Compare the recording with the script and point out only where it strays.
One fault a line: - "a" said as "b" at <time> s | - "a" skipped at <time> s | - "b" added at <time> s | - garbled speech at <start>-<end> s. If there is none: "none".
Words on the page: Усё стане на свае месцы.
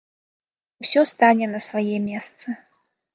none